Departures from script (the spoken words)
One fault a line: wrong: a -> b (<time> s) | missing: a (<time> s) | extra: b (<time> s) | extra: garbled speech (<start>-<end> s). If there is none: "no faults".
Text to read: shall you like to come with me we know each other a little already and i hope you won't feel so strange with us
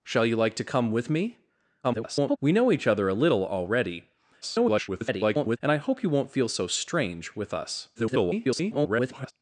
extra: garbled speech (1.8-2.4 s)
extra: garbled speech (4.4-5.6 s)
extra: garbled speech (8.0-9.3 s)